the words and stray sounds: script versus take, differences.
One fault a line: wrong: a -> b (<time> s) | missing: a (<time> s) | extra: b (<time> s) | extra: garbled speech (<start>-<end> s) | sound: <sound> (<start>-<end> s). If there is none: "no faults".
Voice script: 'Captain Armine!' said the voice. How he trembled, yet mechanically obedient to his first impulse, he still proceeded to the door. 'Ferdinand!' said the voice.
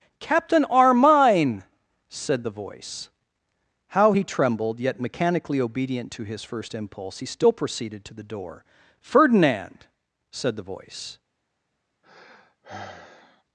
sound: sigh (12.0-13.4 s)